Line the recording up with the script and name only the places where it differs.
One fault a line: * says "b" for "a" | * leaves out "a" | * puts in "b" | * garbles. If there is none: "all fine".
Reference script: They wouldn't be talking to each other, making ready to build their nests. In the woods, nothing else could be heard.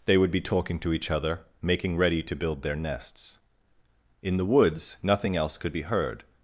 * says "would" for "wouldn't"